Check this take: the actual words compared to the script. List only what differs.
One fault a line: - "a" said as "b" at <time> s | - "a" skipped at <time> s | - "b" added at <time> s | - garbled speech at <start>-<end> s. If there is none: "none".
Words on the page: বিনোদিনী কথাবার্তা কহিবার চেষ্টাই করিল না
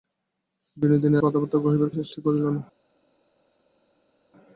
none